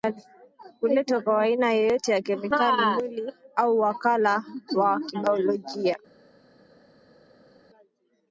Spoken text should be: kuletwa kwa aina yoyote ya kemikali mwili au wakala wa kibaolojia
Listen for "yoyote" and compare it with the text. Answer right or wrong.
right